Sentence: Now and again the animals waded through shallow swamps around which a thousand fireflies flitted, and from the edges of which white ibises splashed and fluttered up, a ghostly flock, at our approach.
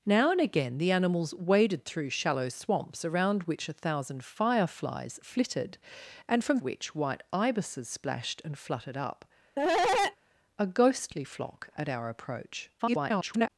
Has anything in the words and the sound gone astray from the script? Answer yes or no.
yes